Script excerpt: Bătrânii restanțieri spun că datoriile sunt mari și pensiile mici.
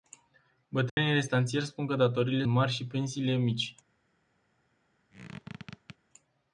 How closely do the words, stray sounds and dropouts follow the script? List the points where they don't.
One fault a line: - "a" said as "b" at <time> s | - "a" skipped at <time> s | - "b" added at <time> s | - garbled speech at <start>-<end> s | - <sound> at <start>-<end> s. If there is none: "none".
- dropout at 0.9-1.0 s
- "sunt" skipped at 2.5 s
- squeak at 5.1-6.0 s